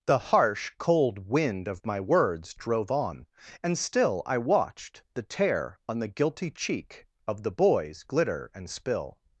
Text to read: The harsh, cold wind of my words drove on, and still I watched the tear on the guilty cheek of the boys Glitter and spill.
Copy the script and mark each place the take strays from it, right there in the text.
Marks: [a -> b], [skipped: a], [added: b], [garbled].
The harsh, cold wind of my words drove on, and still I watched the tear on the guilty cheek of the boys Glitter and spill.